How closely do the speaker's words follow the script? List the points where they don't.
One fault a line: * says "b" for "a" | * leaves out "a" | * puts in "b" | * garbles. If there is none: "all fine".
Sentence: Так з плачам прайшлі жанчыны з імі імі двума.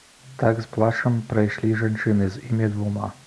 * leaves out "імі"